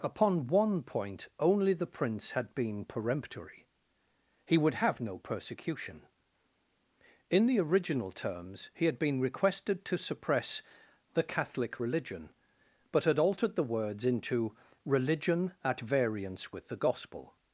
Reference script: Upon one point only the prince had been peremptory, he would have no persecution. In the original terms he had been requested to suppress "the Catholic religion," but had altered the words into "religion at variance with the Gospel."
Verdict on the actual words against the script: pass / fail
pass